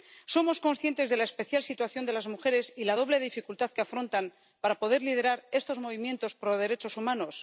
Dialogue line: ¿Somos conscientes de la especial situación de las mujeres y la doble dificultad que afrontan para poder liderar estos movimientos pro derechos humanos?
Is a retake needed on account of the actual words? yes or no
no